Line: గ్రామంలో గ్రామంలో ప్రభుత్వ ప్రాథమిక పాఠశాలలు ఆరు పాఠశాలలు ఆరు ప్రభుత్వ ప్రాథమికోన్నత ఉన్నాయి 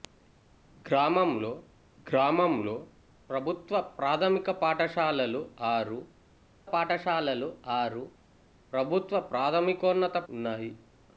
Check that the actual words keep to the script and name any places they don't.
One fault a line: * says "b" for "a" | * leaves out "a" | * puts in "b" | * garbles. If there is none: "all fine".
all fine